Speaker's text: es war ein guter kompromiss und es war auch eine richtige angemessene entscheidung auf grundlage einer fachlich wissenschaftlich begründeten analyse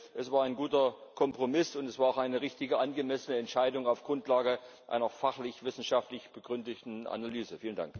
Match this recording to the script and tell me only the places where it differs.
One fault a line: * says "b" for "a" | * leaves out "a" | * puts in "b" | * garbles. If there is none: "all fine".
all fine